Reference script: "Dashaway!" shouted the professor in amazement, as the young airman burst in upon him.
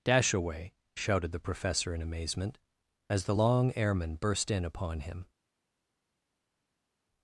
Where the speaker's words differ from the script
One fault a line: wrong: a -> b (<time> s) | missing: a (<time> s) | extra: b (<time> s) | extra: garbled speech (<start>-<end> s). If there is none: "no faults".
wrong: young -> long (3.3 s)